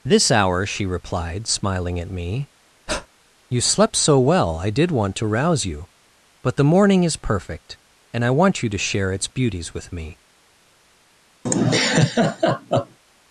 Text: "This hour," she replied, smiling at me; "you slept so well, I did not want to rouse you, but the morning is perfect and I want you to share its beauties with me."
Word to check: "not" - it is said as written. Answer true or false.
false